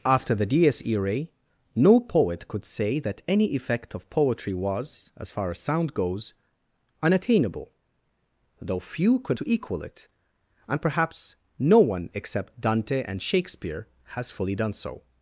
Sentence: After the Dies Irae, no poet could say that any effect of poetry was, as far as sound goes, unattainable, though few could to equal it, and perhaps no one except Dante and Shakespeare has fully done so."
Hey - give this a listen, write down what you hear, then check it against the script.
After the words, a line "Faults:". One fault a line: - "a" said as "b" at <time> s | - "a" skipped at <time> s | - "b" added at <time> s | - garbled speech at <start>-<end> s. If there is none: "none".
After the Dies Irae, no poet could say that any effect of poetry was, as far as sound goes, unattainable, though few could to equal it, and perhaps no one except Dante and Shakespeare has fully done so."
Faults:
none